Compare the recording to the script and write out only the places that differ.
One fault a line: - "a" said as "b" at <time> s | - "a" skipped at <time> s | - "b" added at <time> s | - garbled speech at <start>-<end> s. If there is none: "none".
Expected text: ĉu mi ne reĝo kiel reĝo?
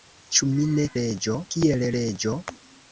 none